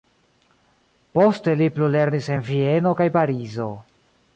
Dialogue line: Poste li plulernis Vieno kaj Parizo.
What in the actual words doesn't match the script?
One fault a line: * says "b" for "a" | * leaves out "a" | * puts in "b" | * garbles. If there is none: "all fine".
* puts in "en"